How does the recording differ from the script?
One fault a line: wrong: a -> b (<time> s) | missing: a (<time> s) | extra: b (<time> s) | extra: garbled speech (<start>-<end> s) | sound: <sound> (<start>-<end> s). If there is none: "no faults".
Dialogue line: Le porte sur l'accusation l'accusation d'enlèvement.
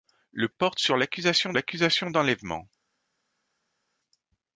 no faults